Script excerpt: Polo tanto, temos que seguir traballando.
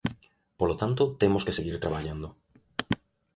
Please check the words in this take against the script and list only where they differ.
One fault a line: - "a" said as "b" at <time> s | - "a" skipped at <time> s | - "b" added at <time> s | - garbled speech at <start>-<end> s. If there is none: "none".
none